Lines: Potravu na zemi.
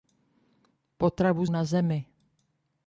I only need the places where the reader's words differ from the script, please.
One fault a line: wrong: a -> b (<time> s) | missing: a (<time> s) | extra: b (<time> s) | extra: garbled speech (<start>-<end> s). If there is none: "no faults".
no faults